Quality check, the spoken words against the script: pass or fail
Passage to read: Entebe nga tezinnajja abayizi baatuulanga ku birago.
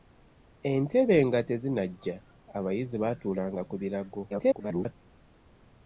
fail